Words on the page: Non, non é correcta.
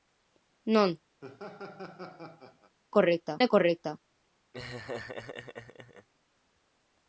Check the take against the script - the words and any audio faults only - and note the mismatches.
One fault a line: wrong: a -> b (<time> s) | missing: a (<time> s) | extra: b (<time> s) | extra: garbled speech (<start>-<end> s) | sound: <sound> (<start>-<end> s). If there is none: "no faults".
sound: laugh (1.2-2.8 s)
wrong: non -> correcta (3.0 s)
sound: laugh (4.5-6.1 s)